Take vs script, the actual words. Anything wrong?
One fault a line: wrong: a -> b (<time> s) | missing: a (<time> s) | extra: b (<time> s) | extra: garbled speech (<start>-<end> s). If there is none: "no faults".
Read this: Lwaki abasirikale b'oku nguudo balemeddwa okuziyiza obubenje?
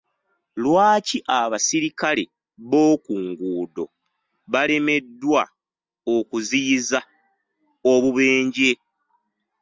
no faults